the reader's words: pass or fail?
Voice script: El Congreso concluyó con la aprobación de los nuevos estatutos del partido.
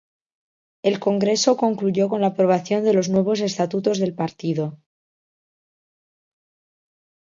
pass